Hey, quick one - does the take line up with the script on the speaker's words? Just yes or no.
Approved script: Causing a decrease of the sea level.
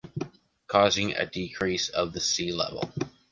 yes